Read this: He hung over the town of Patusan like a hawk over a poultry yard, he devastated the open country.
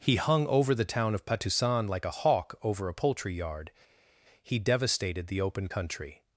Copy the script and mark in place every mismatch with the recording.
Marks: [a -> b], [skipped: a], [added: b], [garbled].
He hung over the town of Patusan like a hawk over a poultry yard, he devastated the open country.